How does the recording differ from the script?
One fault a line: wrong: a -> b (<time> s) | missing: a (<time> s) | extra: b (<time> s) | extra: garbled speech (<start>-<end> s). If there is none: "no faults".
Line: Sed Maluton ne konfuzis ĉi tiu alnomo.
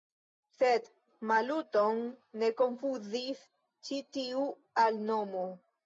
no faults